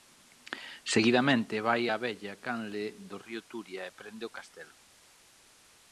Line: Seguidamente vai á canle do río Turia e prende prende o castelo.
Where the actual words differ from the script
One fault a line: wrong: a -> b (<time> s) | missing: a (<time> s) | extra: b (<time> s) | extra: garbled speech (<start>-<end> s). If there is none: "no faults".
extra: vella (2.0 s)
missing: prende (4.3 s)